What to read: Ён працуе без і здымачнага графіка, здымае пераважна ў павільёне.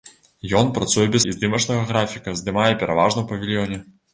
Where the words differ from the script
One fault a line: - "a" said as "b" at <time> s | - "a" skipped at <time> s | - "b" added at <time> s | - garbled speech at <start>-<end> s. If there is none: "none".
none